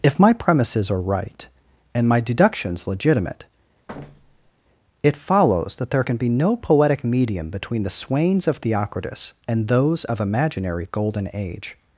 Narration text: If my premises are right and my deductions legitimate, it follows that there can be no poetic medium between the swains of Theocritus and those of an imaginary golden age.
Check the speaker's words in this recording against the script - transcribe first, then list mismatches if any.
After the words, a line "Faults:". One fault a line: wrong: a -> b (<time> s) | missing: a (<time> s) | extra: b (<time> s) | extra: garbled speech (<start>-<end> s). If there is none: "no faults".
If my premises are right and my deductions legitimate, it follows that there can be no poetic medium between the swains of Theocritus and those of imaginary golden age.
Faults:
missing: an (10.2 s)